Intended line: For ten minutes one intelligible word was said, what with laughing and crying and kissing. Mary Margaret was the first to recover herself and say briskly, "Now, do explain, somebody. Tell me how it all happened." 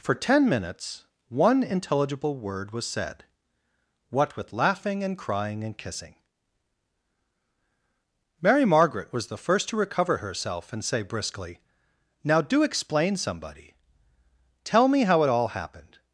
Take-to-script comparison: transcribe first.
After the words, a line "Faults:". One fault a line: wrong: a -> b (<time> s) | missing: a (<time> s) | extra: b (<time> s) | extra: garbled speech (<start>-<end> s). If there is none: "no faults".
For ten minutes one intelligible word was said, what with laughing and crying and kissing. Mary Margaret was the first to recover herself and say briskly, "Now, do explain, somebody. Tell me how it all happened."
Faults:
no faults